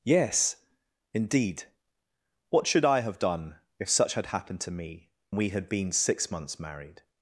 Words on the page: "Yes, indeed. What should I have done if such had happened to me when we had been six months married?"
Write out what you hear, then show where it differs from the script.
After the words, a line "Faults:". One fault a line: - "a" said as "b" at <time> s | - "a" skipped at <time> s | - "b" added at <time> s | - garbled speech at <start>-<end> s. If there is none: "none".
"Yes, indeed. What should I have done if such had happened to me we had been six months married?"
Faults:
- "when" skipped at 5.1 s